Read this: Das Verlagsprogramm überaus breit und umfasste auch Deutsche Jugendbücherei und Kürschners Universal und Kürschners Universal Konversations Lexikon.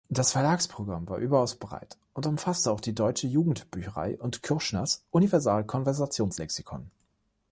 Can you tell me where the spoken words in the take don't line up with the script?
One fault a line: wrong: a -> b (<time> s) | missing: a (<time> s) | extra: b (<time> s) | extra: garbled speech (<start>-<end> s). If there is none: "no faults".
extra: war (1.1 s)
extra: die (2.8 s)
missing: und Kürschners Universal (5.6 s)